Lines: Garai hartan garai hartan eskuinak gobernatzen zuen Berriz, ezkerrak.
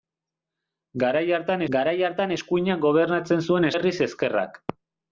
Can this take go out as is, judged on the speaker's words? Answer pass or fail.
pass